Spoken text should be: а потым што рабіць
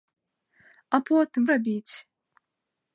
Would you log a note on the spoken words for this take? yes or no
yes